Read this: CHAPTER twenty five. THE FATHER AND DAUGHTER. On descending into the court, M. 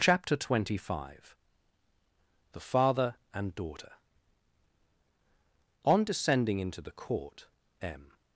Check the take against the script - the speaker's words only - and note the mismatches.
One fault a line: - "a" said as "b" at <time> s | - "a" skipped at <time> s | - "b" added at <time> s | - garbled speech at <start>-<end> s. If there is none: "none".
none